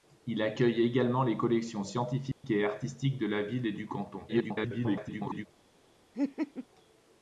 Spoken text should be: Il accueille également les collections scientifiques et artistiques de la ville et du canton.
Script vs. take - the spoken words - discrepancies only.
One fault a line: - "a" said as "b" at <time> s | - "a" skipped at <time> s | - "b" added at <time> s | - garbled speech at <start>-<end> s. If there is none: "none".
- garbled speech at 4.3-5.5 s